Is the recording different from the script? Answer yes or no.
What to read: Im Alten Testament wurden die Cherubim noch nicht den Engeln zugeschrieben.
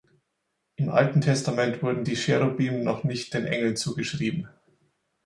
no